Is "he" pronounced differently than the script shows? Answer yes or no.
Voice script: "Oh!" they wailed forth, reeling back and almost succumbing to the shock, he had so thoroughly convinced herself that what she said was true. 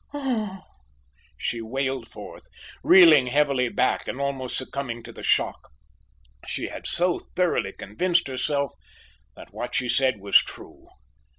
yes